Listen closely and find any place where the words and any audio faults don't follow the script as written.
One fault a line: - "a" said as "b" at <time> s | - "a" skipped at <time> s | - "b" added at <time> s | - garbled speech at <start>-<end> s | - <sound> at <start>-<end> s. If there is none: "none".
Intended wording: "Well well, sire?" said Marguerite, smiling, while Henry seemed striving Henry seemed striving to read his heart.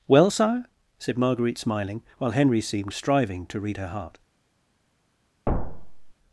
- "well" skipped at 0.3 s
- "Henry seemed striving" skipped at 3.5 s
- "his" said as "her" at 3.8 s
- thud at 5.5-6.1 s